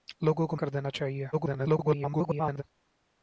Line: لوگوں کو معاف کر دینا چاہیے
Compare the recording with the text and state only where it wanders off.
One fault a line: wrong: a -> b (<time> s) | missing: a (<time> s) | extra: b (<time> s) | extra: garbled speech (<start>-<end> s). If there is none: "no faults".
missing: معاف (0.6 s)
extra: garbled speech (1.3-2.6 s)